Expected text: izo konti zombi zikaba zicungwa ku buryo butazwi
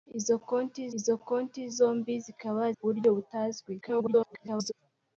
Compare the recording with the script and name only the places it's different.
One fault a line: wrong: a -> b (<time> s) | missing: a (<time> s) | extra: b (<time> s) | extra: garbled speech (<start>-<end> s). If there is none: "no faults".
extra: izo konti (1.0 s)
missing: zicungwa (2.6 s)
extra: garbled speech (3.8-4.7 s)